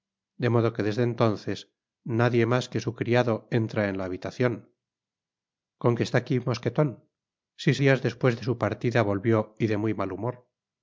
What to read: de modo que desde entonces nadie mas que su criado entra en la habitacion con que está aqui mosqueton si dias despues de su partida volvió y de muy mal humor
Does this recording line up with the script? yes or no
yes